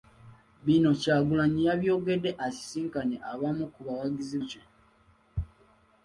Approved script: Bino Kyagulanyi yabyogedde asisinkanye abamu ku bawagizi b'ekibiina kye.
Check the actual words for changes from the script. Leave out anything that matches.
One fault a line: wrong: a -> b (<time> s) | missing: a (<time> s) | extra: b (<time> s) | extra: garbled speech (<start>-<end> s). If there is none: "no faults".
missing: b'ekibiina (4.4 s)